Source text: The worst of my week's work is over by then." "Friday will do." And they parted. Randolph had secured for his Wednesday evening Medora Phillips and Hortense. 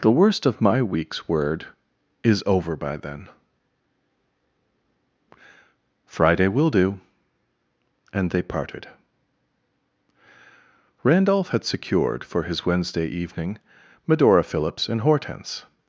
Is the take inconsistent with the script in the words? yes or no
yes